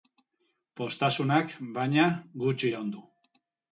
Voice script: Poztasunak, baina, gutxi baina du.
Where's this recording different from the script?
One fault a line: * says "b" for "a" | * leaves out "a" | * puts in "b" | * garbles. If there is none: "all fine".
* says "iraun" for "baina"